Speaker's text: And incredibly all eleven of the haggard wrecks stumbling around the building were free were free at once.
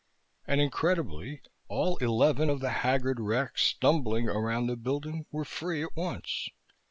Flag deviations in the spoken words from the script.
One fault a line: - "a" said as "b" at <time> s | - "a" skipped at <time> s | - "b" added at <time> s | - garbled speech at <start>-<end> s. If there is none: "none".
- "were free" skipped at 5.8 s